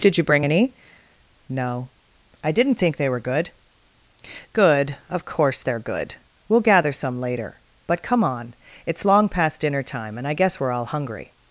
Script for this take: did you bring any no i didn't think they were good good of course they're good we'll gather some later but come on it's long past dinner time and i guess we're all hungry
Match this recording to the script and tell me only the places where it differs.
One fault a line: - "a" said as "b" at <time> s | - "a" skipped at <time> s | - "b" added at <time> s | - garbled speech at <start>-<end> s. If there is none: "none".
none